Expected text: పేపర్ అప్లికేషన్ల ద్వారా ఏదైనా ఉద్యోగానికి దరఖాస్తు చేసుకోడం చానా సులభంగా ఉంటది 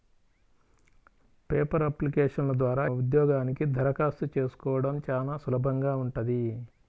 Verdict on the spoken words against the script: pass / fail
fail